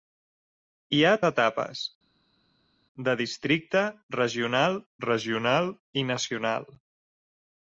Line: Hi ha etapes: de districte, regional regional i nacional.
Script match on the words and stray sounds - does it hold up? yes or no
yes